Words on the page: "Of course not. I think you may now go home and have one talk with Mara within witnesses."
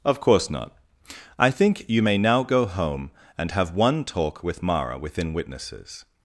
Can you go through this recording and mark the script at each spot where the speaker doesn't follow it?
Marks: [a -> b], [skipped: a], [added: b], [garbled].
"Of course not. I think you may now go home and have one talk with Mara within witnesses."